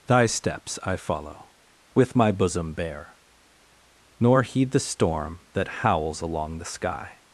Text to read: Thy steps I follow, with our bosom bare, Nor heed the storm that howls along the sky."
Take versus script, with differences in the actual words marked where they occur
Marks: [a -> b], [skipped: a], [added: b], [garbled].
Thy steps I follow, with [our -> my] bosom bare, Nor heed the storm that howls along the sky."